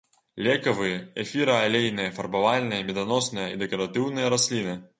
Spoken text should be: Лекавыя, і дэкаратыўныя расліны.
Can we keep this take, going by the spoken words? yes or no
no